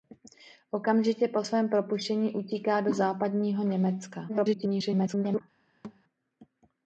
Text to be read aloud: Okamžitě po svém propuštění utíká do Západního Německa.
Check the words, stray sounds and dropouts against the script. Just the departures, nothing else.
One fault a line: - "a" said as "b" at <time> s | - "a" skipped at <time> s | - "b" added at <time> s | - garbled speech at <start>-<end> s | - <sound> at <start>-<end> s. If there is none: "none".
- garbled speech at 4.3-5.4 s
- thud at 5.8-6.0 s